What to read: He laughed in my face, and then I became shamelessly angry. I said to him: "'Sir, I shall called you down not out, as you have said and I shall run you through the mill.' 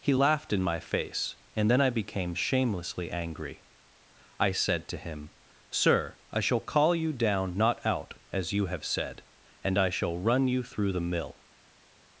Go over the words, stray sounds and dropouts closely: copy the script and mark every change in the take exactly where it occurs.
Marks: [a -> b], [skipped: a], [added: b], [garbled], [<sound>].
He laughed in my face, and then I became shamelessly angry. I said to him: "'Sir, I shall [called -> call] you down not out, as you have said and I shall run you through the mill.'